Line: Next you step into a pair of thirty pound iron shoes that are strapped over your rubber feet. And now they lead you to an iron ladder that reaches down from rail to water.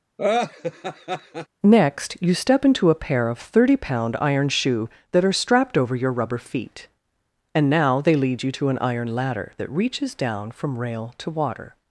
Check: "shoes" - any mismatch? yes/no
yes